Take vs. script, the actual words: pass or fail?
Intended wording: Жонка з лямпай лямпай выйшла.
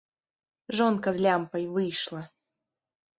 fail